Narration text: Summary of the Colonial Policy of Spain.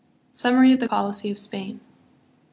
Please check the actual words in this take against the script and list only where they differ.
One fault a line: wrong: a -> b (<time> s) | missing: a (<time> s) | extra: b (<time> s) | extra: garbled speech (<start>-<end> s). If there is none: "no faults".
missing: Colonial (0.9 s)